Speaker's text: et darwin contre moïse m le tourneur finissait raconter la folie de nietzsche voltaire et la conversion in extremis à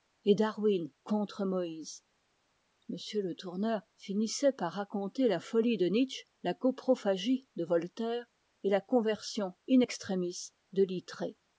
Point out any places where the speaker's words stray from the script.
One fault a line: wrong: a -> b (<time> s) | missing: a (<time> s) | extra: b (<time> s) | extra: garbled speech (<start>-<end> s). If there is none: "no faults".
extra: par (4.5 s)
extra: la coprophagie de (6.4 s)
wrong: à -> de (10.7 s)